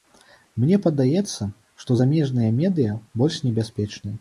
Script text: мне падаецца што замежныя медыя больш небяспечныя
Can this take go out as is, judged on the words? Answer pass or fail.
pass